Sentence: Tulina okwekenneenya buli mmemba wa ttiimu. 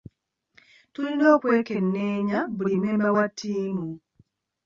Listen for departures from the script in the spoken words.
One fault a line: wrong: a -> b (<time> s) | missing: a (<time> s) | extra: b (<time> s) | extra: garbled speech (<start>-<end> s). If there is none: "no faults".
no faults